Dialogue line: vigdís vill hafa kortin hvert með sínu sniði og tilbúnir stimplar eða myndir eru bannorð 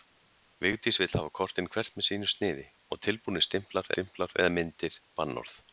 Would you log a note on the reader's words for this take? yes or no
yes